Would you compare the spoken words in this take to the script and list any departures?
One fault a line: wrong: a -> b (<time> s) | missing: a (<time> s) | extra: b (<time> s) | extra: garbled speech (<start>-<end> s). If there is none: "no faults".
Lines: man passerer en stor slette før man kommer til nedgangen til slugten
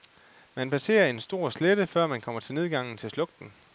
no faults